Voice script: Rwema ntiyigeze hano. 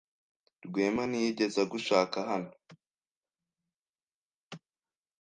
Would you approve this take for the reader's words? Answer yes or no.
no